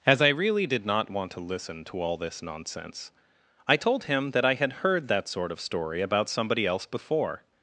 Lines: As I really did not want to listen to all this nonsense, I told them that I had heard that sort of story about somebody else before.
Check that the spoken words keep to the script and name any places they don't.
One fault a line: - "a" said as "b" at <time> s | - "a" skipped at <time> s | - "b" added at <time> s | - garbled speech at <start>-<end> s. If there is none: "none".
- "them" said as "him" at 4.0 s